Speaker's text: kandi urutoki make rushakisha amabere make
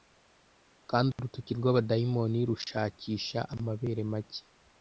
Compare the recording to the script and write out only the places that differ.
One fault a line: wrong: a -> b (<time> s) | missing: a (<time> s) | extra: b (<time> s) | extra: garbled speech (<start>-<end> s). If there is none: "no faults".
wrong: make -> rw'abadayimoni (1.6 s)